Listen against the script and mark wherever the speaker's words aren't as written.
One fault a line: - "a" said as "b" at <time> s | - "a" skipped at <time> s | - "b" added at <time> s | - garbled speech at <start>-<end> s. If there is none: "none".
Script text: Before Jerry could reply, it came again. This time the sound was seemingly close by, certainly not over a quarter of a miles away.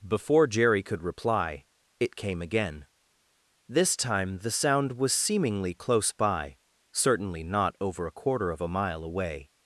- "miles" said as "mile" at 8.7 s